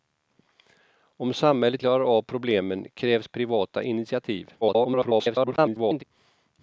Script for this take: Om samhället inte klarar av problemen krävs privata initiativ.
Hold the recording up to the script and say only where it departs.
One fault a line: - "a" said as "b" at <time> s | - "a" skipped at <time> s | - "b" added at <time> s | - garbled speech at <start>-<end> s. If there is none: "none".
- "inte" skipped at 1.8 s
- garbled speech at 4.6-6.0 s